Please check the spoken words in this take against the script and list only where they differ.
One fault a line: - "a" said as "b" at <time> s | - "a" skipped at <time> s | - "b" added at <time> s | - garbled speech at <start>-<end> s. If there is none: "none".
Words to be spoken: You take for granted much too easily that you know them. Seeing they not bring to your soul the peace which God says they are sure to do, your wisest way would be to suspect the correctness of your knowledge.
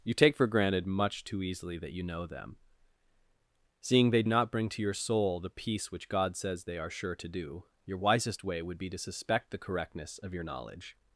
none